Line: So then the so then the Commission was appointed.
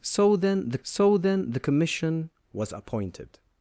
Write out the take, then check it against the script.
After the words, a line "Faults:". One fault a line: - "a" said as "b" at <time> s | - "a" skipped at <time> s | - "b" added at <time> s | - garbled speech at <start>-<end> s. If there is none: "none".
So then the so then the Commission was appointed.
Faults:
none